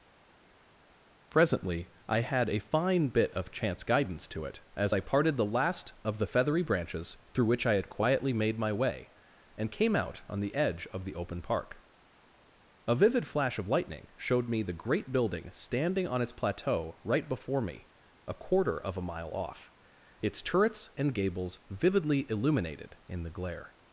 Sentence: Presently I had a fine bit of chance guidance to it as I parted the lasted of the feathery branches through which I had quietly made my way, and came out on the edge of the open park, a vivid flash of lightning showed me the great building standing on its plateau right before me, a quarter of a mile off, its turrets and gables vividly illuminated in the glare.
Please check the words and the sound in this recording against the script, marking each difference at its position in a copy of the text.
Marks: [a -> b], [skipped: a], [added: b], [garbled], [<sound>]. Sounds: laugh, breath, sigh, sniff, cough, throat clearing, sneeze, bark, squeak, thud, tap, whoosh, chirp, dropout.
Presently I had a fine bit of chance guidance to it as I parted the [lasted -> last] of the feathery branches through which I had quietly made my way, and came out on the edge of the open park, a vivid flash of lightning showed me the great building standing on its plateau right before me, a quarter of a mile off, its turrets and gables vividly illuminated in the glare.